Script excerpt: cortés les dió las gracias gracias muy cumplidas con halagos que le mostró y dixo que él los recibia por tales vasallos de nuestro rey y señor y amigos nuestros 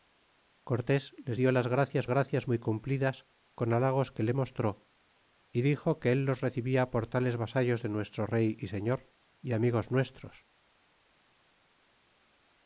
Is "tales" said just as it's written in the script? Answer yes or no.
yes